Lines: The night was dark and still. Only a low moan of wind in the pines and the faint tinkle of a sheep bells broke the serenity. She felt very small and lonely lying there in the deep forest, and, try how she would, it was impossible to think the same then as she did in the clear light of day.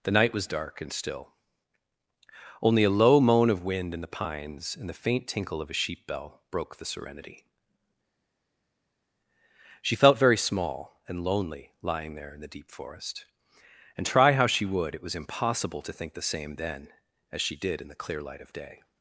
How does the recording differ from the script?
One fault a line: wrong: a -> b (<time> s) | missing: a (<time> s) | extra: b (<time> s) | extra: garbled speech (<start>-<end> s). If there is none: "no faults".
wrong: bells -> bell (6.1 s)